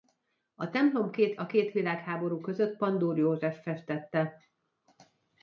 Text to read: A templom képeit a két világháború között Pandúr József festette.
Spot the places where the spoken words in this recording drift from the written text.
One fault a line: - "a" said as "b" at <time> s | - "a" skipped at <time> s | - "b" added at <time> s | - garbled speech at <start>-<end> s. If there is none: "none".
- "képeit" said as "két" at 1.1 s